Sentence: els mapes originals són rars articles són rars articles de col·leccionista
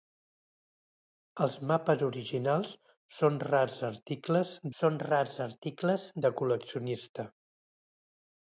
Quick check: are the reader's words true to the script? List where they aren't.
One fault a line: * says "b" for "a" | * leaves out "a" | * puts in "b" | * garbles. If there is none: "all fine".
all fine